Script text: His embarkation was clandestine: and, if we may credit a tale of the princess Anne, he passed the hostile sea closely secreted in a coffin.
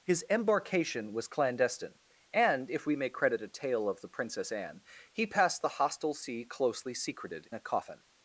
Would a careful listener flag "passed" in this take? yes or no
no